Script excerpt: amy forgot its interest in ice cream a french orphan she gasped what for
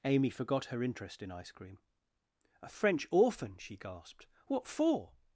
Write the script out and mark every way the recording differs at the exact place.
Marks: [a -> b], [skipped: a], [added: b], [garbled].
amy forgot [its -> her] interest in ice cream a french orphan she gasped what for